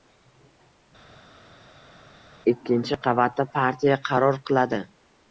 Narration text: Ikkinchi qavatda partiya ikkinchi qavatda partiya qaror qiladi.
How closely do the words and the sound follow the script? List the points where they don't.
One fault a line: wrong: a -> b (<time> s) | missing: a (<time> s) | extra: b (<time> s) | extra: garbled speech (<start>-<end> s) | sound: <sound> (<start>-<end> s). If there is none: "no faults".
missing: ikkinchi qavatda partiya (4.0 s)